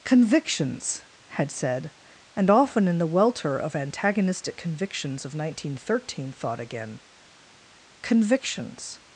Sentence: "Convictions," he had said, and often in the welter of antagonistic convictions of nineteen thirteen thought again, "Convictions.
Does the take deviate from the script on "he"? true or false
true